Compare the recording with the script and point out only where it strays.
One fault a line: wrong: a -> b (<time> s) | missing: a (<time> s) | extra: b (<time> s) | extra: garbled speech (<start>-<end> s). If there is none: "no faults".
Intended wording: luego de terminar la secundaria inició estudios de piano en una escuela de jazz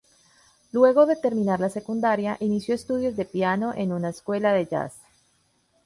no faults